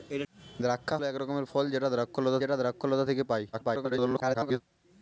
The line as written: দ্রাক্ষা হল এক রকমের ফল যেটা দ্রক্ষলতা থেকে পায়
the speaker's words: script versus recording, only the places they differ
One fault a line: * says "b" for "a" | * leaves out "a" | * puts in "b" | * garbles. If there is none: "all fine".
* leaves out "হল"
* puts in "যেটা দ্রক্ষলতা"
* garbles